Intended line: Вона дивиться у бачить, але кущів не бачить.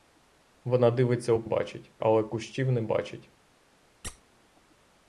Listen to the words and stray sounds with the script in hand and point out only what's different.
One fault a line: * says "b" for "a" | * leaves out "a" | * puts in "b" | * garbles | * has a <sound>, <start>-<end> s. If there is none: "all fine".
* has a squeak, 4.0-4.2 s